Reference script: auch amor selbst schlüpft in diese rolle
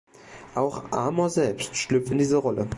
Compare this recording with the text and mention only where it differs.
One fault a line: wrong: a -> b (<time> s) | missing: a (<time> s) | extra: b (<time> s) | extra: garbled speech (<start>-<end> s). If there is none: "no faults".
no faults